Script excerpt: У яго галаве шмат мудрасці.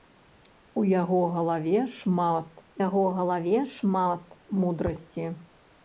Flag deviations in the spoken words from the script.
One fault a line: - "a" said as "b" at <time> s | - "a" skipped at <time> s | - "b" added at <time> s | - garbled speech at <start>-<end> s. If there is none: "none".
- "яго галаве шмат" added at 2.9 s